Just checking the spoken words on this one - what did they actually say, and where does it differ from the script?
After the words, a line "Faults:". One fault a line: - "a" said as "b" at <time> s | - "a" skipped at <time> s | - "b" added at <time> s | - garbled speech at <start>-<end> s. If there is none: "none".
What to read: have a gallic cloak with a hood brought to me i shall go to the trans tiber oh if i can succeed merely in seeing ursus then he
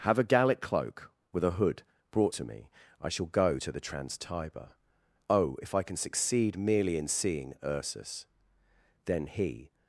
have a gallic cloak with a hood brought to me i shall go to the trans tiber oh if i can succeed merely in seeing ursus then he
Faults:
none